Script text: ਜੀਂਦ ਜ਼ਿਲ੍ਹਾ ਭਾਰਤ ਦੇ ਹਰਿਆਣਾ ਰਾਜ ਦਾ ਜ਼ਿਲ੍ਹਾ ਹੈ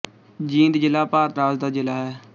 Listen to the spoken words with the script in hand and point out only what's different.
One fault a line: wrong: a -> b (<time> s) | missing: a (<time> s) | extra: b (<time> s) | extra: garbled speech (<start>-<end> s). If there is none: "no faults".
missing: ਦੇ ਹਰਿਆਣਾ (1.4 s)